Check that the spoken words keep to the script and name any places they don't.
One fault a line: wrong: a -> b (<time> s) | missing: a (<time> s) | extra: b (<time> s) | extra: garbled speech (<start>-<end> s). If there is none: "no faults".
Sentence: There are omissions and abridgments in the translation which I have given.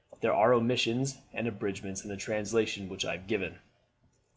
no faults